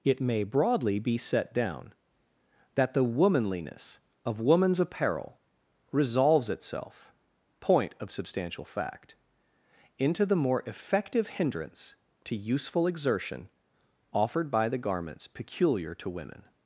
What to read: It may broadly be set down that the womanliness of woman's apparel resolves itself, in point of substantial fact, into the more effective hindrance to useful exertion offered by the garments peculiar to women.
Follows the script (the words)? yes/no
no